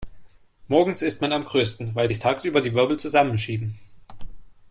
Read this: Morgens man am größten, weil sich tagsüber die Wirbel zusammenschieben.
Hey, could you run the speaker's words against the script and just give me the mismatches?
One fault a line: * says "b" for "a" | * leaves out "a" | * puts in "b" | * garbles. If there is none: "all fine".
* puts in "ist"